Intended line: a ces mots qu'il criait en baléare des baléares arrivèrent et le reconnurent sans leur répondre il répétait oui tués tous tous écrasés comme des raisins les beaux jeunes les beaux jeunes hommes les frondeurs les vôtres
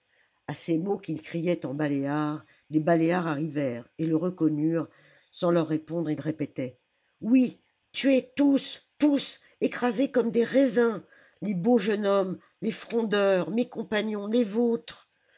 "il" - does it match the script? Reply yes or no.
yes